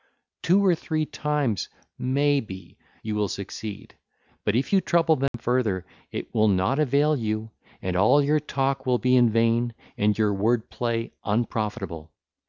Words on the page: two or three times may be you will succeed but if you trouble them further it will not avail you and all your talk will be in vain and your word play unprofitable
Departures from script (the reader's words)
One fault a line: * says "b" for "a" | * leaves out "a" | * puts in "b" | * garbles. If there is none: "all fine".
all fine